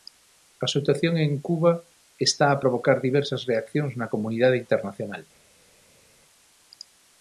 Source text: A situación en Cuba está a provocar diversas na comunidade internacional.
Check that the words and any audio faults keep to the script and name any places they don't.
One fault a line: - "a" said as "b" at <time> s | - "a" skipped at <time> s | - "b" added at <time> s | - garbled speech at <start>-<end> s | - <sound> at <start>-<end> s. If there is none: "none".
- "reaccións" added at 3.5 s